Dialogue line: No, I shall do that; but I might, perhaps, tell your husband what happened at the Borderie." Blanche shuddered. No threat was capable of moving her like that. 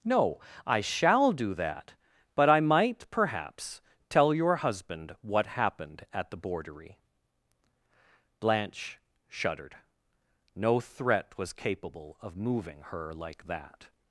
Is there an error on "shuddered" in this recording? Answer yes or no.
no